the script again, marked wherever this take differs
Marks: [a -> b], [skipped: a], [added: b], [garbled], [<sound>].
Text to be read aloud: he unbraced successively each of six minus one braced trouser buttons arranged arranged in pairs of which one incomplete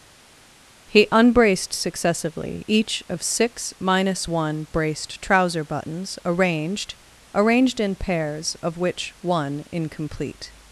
he unbraced successively each of six minus one braced trouser buttons arranged arranged in pairs of which one incomplete